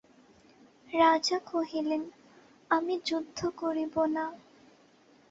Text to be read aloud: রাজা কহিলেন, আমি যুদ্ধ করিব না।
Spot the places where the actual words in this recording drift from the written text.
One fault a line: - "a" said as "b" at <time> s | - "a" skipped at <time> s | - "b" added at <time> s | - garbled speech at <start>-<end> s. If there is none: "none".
none